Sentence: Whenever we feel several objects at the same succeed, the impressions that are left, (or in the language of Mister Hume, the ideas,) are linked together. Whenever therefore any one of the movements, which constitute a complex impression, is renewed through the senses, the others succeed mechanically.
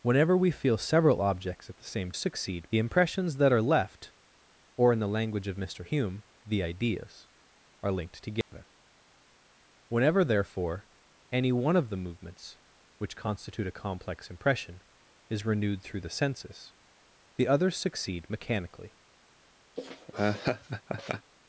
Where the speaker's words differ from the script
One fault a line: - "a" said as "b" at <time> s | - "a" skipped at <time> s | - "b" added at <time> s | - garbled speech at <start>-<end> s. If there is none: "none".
none